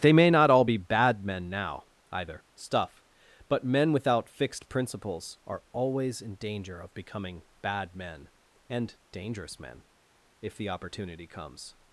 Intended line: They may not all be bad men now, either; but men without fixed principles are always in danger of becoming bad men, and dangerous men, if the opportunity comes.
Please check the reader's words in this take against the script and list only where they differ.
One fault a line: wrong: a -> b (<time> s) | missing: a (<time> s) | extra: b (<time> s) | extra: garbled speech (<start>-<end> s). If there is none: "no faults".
extra: stuff (2.5 s)